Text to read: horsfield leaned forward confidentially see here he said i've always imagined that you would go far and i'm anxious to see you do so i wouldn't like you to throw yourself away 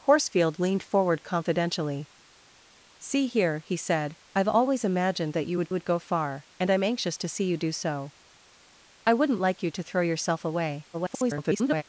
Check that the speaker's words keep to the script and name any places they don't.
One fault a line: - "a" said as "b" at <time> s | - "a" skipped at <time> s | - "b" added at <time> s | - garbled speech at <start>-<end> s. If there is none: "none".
- "would" added at 5.7 s
- garbled speech at 10.9-11.8 s